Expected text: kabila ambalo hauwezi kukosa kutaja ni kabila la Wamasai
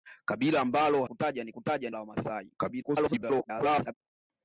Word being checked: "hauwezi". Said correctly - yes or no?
no